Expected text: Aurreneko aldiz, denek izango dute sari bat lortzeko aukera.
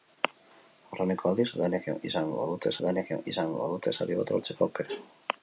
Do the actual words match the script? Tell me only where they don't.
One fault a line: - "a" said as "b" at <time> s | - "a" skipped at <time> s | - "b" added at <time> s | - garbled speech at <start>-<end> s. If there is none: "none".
- "denek izango dute" added at 2.8 s